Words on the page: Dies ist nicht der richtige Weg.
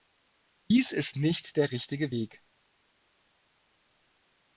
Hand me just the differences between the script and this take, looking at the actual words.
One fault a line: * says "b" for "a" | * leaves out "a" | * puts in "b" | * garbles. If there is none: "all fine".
all fine